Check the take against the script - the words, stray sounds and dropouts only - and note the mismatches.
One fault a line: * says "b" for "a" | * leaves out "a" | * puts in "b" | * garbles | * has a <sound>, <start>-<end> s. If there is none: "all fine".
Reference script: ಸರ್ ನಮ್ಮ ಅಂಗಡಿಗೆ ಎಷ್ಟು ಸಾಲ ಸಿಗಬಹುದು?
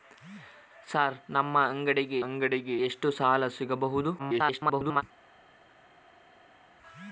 * puts in "ಅಂಗಡಿಗೆ"
* garbles